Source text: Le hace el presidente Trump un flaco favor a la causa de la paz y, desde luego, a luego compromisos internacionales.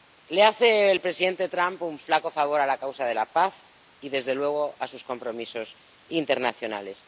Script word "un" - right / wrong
right